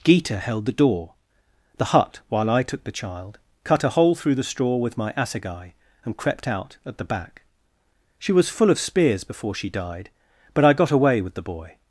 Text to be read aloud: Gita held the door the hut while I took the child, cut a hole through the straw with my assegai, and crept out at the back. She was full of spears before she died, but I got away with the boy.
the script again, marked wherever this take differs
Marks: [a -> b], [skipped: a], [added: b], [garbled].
Gita held the door the hut while I took the child, cut a hole through the straw with my assegai, and crept out at the back. She was full of spears before she died, but I got away with the boy.